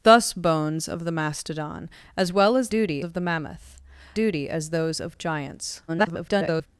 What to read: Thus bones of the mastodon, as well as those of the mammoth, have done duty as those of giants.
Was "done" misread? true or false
true